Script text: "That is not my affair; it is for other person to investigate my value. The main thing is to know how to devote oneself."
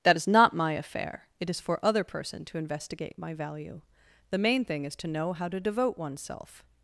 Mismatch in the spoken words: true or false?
false